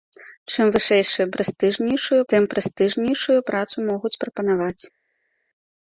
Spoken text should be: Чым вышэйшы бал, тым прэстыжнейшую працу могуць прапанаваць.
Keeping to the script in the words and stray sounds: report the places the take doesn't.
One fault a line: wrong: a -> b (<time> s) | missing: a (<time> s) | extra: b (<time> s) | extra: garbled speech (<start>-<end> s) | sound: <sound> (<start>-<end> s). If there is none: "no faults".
wrong: бал -> прэстыжнейшую (1.4 s)